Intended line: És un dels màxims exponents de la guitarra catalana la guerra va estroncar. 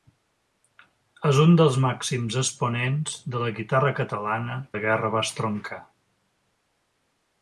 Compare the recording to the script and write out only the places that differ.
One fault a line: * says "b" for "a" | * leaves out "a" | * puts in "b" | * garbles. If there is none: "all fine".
all fine